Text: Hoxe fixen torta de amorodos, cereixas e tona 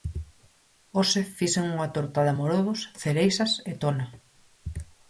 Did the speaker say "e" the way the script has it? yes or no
yes